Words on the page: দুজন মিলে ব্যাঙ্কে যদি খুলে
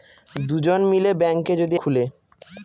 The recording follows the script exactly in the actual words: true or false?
true